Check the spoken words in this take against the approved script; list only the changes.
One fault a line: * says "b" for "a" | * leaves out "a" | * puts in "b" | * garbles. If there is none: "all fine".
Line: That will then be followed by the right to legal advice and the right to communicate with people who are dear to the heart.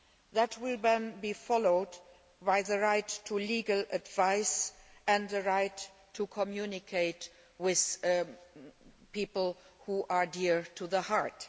all fine